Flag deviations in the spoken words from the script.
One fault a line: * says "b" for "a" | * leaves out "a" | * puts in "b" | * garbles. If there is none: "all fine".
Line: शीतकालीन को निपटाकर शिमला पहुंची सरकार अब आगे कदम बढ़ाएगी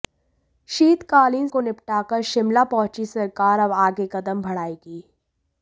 all fine